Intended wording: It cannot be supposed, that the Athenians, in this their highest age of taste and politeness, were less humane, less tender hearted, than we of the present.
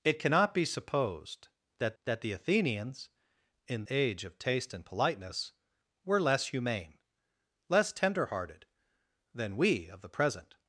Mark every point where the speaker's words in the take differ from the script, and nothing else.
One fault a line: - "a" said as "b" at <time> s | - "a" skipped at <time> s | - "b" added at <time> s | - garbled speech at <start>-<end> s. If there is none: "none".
- "that" added at 2.0 s
- "this their highest" skipped at 3.8 s